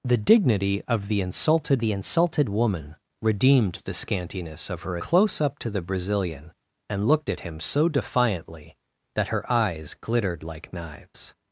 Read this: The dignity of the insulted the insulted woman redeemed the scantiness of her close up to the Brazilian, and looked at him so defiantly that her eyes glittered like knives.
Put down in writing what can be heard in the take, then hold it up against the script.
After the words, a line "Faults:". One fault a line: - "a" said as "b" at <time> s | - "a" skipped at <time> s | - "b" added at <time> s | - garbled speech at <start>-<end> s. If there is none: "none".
The dignity of the insulted the insulted woman redeemed the scantiness of her close up to the Brazilian, and looked at him so defiantly that her eyes glittered like knives.
Faults:
none